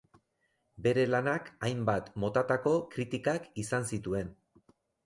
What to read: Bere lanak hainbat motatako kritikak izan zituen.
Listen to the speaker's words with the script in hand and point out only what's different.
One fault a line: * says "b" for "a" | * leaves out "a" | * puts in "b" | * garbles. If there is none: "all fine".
all fine